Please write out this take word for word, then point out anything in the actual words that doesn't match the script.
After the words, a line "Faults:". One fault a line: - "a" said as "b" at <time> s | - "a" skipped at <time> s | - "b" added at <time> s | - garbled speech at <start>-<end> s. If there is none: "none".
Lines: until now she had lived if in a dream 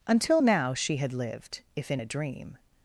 until now she had lived if in a dream
Faults:
none